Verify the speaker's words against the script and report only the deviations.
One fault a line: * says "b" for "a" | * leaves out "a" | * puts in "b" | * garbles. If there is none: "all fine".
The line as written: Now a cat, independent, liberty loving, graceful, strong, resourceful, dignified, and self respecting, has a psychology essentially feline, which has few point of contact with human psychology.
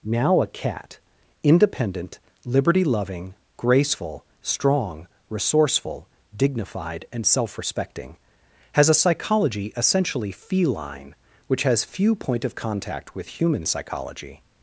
all fine